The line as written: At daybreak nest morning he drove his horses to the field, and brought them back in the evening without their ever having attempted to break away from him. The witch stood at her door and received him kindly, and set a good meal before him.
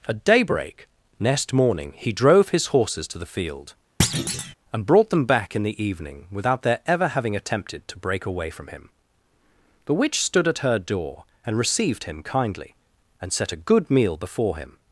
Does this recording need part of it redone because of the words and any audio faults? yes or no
yes